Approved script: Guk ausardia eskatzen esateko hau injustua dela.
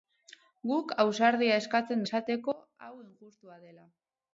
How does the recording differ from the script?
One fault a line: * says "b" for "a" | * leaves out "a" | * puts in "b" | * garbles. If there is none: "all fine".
all fine